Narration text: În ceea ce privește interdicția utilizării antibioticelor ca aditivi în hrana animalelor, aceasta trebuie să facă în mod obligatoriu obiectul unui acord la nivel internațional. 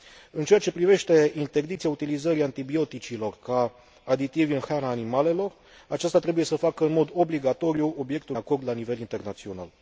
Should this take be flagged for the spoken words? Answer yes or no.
yes